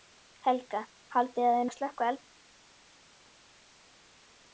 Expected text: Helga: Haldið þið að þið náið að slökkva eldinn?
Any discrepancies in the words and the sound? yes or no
yes